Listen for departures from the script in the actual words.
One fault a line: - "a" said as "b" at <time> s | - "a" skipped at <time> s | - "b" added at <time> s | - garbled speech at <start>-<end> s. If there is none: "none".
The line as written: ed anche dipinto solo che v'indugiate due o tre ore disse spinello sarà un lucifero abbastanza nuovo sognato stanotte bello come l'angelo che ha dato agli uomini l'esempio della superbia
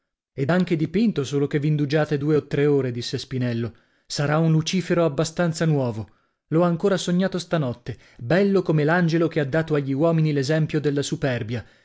- "l'ho ancora" added at 6.5 s